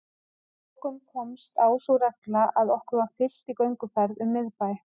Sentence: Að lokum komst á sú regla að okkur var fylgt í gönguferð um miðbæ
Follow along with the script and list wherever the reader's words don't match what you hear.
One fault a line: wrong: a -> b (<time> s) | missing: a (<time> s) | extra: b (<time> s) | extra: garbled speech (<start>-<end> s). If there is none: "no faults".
no faults